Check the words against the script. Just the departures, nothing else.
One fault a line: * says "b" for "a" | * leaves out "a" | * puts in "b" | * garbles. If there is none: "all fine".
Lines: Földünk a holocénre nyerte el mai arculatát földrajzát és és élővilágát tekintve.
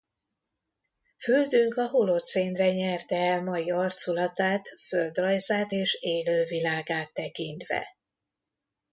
* leaves out "és"